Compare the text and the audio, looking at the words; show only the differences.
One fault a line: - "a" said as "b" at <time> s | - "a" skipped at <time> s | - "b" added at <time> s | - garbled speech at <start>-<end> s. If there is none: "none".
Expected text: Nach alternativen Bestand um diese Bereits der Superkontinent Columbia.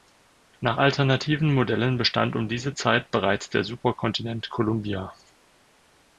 - "Modellen" added at 1.5 s
- "Zeit" added at 2.7 s